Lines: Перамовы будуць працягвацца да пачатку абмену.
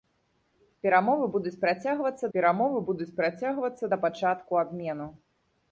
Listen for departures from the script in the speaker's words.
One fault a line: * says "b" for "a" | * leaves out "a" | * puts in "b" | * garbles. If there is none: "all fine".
* puts in "перамовы будуць працягвацца"